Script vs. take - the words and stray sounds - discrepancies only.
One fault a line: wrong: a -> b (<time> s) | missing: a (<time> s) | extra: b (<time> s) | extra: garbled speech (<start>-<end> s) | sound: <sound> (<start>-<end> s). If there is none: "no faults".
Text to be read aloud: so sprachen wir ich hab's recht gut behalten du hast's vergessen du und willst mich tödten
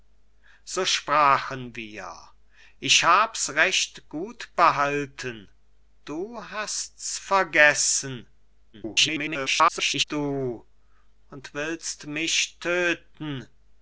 extra: garbled speech (8.7-10.0 s)